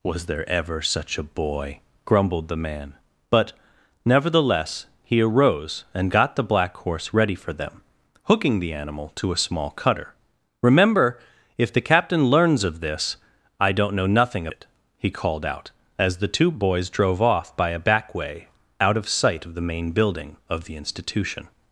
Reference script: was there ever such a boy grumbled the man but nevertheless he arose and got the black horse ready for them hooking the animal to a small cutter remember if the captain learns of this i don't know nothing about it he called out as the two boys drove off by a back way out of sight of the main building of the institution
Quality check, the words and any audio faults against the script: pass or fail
fail